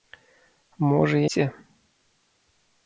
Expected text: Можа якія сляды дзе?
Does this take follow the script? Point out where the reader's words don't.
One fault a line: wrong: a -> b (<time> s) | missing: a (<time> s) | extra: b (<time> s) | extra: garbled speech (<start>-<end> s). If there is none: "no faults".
missing: якія сляды (1.2 s)